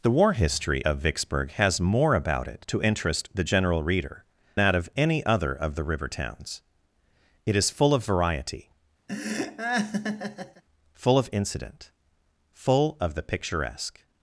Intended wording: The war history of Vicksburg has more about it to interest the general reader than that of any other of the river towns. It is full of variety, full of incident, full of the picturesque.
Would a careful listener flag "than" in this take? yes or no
yes